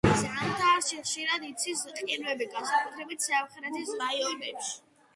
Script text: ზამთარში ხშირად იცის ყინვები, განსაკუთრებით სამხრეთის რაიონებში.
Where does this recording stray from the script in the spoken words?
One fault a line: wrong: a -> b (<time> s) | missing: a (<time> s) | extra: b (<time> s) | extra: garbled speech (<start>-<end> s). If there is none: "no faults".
no faults